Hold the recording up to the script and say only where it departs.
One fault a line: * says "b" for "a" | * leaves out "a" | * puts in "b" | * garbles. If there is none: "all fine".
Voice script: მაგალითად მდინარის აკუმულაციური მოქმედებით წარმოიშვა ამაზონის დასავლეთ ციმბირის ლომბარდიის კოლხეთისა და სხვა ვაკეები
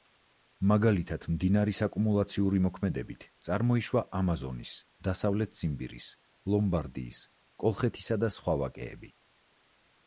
all fine